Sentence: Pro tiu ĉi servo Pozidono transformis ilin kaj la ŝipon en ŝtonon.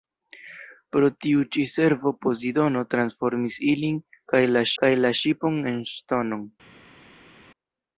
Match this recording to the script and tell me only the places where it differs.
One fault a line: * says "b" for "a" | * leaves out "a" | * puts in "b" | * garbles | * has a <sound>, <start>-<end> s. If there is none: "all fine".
* puts in "kaj la"